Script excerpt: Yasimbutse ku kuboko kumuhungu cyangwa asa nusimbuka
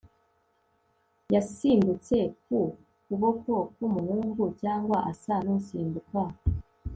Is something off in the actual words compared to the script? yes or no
no